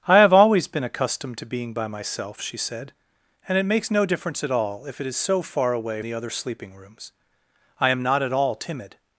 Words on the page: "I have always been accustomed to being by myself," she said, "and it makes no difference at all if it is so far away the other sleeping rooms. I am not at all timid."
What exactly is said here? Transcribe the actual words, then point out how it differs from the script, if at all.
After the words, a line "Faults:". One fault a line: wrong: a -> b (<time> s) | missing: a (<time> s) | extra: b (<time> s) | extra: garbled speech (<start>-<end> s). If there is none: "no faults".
"I have always been accustomed to being by myself," she said, "and it makes no difference at all if it is so far away the other sleeping rooms. I am not at all timid."
Faults:
no faults